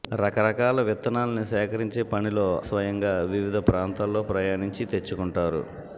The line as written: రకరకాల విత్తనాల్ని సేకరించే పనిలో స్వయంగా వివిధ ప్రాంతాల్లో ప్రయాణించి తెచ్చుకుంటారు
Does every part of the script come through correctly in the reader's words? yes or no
yes